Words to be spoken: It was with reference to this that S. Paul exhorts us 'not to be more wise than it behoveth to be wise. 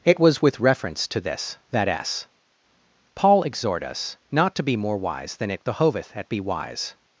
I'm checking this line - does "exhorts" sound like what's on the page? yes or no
no